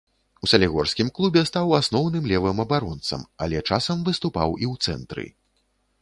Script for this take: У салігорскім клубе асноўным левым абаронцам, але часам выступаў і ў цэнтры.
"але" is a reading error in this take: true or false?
false